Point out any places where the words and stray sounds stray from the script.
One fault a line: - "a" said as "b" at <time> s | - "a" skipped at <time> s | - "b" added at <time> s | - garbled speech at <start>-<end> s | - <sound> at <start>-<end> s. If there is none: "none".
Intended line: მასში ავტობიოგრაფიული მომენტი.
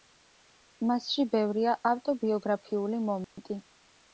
- "ბევრია" added at 1.4 s
- dropout at 3.2-3.4 s